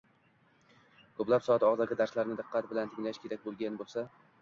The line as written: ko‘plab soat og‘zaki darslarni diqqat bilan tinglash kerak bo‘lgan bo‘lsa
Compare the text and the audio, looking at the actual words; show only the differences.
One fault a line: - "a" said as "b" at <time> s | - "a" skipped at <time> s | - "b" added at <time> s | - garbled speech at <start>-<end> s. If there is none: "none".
none